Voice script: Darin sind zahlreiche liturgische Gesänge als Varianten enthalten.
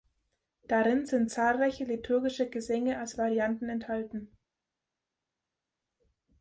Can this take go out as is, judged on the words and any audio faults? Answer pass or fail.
pass